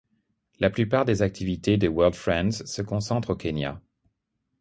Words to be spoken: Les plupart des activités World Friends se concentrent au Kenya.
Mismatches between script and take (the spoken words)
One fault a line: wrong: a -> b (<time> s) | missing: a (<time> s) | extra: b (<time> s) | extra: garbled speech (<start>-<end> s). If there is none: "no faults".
wrong: Les -> La (0.6 s)
extra: de (1.8 s)